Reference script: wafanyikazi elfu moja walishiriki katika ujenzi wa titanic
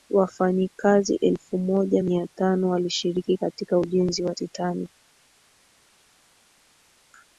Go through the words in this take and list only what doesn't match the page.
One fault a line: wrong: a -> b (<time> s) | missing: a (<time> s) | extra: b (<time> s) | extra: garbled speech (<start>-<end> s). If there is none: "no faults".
extra: mia tano (2.0 s)